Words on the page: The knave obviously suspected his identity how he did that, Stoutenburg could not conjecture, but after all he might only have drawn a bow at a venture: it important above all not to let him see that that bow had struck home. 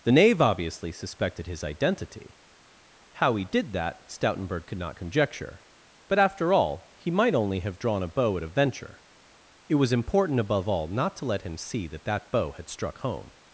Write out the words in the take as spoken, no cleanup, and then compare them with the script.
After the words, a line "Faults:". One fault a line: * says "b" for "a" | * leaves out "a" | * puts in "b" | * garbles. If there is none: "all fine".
The knave obviously suspected his identity how he did that, Stoutenburg could not conjecture, but after all he might only have drawn a bow at a venture: it was important above all not to let him see that that bow had struck home.
Faults:
* puts in "was"